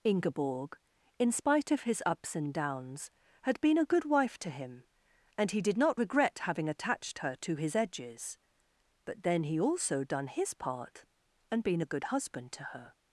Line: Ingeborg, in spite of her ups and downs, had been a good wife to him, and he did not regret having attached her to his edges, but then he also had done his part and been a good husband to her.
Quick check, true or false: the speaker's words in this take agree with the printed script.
false